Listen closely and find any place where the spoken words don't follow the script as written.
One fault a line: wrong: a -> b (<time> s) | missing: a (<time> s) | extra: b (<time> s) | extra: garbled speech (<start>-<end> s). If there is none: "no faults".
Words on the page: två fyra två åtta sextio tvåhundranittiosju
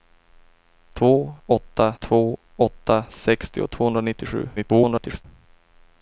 wrong: fyra -> åtta (1.4 s)
extra: garbled speech (4.6-5.3 s)